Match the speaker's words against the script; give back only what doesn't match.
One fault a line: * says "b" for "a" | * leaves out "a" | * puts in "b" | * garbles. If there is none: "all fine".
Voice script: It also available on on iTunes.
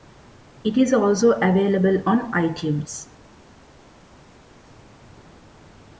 * puts in "is"
* leaves out "on"